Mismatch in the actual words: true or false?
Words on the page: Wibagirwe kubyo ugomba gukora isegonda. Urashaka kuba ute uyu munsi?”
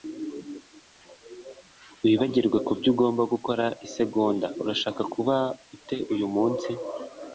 false